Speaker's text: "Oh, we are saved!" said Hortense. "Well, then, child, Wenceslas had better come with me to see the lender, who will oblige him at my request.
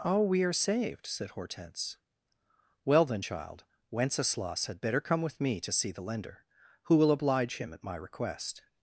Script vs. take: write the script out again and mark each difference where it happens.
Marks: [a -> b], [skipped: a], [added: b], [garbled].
"Oh, we are saved!" said Hortense. "Well, then, child, Wenceslas had better come with me to see the lender, who will oblige him at my request.